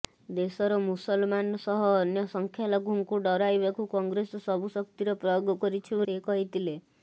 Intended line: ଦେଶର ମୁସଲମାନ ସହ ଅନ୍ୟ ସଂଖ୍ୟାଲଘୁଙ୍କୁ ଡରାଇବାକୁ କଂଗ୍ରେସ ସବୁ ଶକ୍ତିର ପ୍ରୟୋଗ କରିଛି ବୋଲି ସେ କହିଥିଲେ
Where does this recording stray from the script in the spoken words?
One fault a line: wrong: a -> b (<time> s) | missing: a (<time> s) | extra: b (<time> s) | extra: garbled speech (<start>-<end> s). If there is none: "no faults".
missing: ବୋଲି (6.0 s)